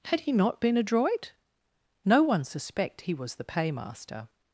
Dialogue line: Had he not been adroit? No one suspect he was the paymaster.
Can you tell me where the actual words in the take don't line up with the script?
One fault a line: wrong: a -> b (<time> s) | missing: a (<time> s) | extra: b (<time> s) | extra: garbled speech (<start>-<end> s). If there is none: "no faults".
no faults